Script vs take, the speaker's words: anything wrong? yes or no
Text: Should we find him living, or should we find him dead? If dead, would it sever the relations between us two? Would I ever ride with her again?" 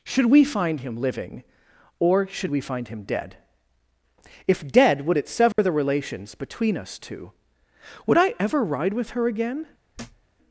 no